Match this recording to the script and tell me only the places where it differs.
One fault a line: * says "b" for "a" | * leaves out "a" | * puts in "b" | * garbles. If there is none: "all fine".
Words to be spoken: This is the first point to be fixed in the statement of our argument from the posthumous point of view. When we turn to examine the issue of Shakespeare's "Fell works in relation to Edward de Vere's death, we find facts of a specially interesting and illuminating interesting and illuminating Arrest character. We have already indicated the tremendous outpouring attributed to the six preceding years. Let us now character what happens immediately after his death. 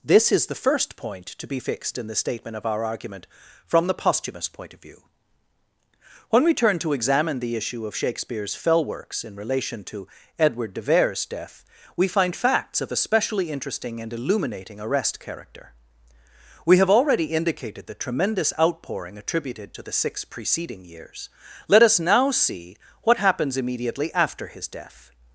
* leaves out "interesting and illuminating"
* says "see" for "character"